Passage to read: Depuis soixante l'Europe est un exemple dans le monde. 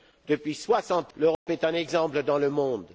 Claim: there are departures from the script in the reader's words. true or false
false